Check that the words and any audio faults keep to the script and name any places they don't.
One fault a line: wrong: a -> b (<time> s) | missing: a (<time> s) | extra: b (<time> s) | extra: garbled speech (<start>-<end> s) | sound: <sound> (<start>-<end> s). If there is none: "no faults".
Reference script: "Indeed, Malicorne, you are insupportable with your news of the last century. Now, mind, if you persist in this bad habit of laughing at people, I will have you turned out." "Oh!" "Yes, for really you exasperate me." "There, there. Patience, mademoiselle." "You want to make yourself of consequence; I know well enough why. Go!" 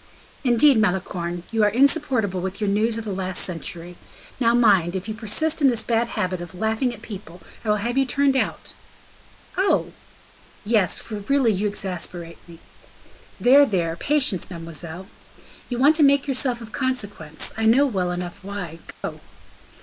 sound: dropout (18.9-19.0 s)